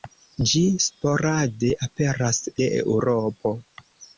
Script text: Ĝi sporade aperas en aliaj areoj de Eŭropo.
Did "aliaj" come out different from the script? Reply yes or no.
yes